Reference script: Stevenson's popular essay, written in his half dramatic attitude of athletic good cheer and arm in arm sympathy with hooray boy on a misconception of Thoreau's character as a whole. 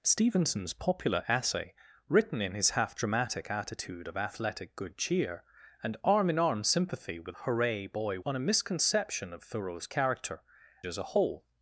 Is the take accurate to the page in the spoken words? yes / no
yes